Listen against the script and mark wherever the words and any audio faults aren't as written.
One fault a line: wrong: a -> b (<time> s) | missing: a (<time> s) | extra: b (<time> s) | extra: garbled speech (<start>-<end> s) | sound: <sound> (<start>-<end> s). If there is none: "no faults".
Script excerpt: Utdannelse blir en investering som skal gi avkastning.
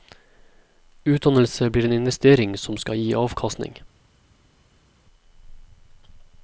no faults